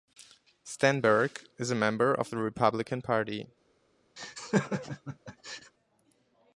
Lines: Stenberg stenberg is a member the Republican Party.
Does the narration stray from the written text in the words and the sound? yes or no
yes